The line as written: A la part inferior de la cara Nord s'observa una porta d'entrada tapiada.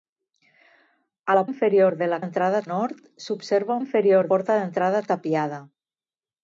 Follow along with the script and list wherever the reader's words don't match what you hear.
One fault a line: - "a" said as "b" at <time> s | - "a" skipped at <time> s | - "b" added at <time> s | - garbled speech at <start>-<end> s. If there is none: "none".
- "part" skipped at 1.4 s
- "cara" said as "d'entrada" at 2.2 s
- "una" said as "inferior" at 3.8 s